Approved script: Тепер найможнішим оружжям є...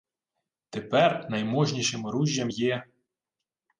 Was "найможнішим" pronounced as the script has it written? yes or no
yes